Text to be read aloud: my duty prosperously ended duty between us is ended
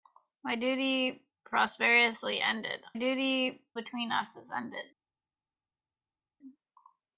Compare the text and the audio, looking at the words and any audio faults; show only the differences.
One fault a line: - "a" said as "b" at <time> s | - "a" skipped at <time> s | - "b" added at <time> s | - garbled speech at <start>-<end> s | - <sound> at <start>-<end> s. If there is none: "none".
none